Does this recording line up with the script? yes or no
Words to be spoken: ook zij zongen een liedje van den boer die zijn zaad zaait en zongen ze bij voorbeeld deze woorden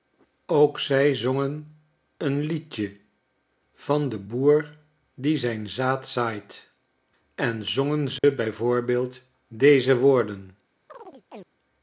yes